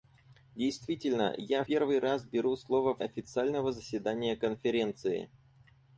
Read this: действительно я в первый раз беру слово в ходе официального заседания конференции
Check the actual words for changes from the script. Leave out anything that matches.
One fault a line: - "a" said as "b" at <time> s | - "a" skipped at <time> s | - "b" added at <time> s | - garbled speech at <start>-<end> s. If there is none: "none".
- "в" skipped at 1.6 s
- "ходе" skipped at 3.0 s